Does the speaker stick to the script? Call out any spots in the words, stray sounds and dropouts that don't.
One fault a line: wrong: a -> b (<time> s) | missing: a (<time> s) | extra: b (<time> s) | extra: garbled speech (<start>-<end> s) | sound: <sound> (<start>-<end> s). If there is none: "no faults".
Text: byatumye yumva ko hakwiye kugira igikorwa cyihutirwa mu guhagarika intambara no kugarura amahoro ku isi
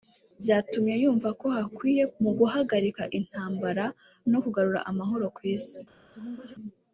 missing: kugira igikorwa cyihutirwa (2.0 s)
sound: sneeze (6.1-6.6 s)